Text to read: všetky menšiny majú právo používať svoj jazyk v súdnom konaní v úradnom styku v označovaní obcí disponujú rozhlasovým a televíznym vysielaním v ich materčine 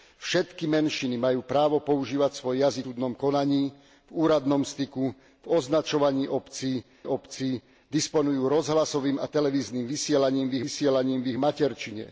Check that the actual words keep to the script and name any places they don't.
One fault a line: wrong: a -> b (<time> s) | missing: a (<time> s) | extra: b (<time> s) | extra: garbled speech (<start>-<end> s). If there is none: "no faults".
missing: v (2.9 s)
extra: obcí (7.1 s)
extra: vysielaním v (10.6 s)